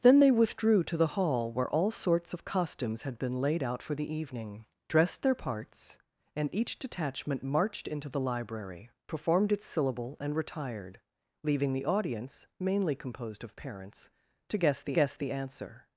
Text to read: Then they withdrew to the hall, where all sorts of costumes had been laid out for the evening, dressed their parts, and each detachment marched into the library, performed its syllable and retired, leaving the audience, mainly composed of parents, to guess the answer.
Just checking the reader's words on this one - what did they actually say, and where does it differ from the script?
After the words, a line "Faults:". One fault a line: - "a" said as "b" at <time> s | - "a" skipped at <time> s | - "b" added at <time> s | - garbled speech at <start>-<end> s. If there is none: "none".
Then they withdrew to the hall, where all sorts of costumes had been laid out for the evening, dressed their parts, and each detachment marched into the library, performed its syllable and retired, leaving the audience, mainly composed of parents, to guess the guess the answer.
Faults:
- "guess the" added at 14.9 s